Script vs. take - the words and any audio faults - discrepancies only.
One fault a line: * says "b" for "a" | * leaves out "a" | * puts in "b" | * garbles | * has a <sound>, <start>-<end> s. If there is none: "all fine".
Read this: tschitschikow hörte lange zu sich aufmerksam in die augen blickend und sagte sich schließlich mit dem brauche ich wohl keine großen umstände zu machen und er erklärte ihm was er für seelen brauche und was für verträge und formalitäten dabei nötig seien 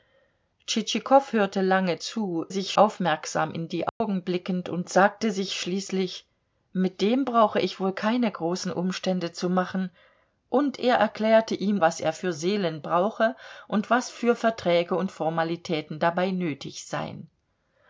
* has a dropout, 3.9-4.0 s